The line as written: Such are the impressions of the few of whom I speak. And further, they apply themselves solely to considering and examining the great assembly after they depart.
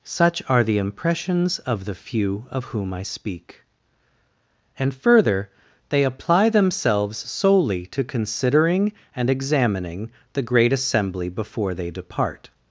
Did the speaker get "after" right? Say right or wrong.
wrong